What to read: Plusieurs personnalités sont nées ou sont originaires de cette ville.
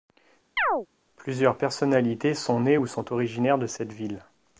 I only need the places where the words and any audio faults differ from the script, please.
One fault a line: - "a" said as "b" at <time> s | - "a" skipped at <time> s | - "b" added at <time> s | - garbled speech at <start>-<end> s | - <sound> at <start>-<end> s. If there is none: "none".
- chirp at 0.6-0.9 s